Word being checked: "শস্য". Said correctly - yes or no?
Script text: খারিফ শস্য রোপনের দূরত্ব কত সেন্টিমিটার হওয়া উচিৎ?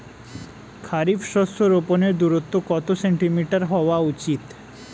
yes